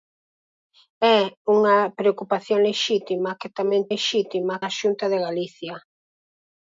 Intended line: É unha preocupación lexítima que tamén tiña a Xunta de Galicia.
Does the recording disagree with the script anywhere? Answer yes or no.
yes